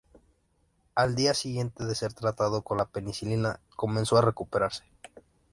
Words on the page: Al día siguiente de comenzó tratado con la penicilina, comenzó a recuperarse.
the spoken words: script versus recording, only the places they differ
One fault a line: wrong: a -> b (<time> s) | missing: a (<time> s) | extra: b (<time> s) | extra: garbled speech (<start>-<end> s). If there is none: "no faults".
wrong: comenzó -> ser (1.9 s)